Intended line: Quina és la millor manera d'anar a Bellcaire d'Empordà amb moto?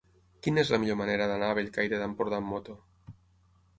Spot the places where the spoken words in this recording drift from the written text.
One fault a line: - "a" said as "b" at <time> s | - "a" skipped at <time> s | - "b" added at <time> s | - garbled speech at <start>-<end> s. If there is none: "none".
none